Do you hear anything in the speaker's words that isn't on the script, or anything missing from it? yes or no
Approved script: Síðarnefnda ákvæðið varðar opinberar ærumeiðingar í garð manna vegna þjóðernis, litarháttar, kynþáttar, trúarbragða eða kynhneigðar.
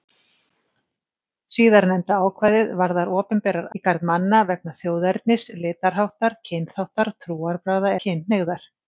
yes